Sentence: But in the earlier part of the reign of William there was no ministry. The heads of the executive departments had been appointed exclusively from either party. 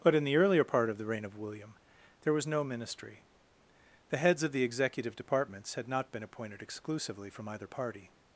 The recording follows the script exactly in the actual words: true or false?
false